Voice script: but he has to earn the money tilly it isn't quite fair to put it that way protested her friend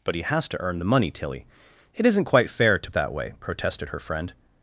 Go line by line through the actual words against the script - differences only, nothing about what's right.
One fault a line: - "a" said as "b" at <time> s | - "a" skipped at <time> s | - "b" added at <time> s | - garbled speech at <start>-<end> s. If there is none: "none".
- "put it" skipped at 2.9 s